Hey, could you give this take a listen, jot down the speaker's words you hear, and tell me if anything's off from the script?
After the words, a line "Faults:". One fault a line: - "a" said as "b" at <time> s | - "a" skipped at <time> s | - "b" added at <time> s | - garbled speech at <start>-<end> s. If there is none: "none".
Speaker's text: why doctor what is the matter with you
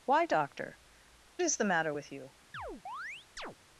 why doctor is the matter with you
Faults:
- "what" skipped at 0.8 s